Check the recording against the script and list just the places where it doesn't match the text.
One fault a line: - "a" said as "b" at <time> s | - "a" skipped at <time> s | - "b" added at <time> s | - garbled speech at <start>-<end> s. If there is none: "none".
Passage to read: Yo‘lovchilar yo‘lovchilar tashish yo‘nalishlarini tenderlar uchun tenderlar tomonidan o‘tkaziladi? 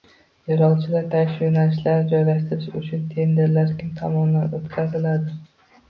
- "yo‘lovchilar" skipped at 1.0 s
- "tenderlar" said as "joylashtirish" at 2.1 s
- "kim" added at 3.8 s